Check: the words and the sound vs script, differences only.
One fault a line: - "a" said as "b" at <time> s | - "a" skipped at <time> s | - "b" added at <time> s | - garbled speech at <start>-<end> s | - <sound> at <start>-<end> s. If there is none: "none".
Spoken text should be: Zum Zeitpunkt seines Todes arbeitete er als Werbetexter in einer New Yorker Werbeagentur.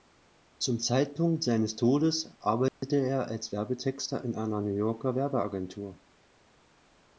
- dropout at 2.7-2.8 s